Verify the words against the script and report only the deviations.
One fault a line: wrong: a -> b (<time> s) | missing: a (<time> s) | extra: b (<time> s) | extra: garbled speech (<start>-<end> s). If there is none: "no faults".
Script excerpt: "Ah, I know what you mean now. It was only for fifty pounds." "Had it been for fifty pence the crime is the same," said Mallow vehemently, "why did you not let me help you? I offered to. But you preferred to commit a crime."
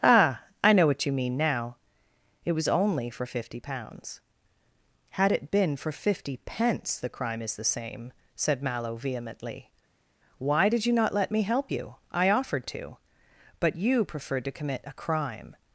no faults